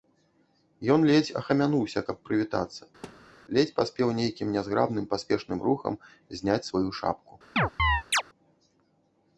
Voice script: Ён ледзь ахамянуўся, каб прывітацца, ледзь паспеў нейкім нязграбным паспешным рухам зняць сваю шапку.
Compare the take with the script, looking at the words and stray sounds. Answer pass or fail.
fail